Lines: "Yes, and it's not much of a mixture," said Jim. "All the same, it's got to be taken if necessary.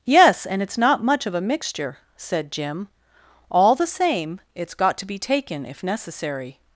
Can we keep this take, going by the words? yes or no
yes